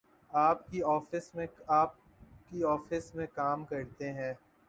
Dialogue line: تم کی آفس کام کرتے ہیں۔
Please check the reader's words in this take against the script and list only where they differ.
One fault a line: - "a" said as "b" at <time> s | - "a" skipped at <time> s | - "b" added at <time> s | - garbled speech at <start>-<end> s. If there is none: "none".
- "تم" said as "آپ" at 0.3 s
- "میں" added at 3.1 s